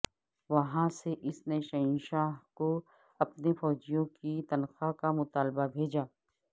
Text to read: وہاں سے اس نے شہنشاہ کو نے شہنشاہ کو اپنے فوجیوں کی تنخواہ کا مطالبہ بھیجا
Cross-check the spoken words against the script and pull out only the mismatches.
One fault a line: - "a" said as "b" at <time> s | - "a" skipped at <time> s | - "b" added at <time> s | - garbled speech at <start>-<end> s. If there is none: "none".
- "نے شہنشاہ کو" skipped at 2.7 s